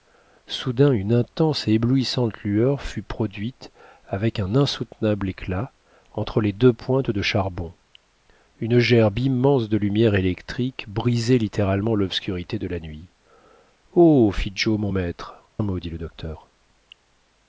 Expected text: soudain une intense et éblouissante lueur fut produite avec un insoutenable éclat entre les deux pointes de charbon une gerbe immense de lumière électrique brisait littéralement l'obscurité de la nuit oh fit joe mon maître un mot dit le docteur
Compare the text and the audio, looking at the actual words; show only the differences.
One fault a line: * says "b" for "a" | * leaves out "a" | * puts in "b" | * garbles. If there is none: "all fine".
all fine